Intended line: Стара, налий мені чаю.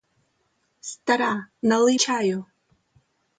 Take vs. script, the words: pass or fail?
fail